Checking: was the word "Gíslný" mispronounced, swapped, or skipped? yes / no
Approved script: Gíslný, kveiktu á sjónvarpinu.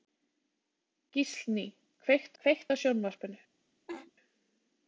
no